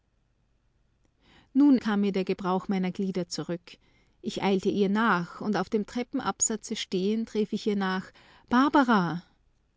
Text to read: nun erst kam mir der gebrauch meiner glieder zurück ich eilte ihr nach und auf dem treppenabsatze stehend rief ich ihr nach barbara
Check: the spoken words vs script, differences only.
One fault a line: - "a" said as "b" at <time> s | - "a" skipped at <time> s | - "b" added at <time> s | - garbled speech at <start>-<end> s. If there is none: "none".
- "erst" skipped at 1.8 s